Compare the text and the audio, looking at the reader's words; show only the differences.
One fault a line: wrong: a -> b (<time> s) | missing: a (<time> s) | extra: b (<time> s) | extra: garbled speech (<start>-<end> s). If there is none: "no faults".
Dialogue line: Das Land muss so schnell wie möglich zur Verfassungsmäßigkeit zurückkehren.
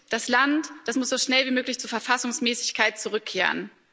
no faults